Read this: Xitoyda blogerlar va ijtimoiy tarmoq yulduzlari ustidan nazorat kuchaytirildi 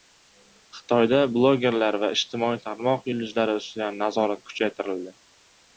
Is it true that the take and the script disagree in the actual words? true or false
false